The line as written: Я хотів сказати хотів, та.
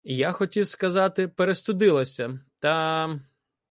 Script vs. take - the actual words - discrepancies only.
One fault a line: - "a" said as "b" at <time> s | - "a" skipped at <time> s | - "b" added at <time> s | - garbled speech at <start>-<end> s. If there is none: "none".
- "хотів" said as "перестудилася" at 1.3 s